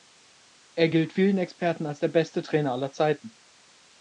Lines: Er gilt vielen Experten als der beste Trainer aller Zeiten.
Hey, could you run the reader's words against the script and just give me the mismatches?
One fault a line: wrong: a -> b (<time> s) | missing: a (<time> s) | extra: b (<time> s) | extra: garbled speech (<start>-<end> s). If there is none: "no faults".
no faults